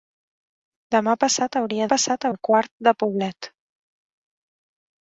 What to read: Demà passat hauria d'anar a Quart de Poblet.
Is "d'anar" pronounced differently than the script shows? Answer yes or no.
yes